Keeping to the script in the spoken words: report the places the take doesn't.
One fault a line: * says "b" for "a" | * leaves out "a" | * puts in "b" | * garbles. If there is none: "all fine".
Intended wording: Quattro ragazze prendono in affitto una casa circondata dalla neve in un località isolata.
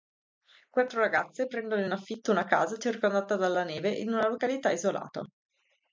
* says "una" for "un"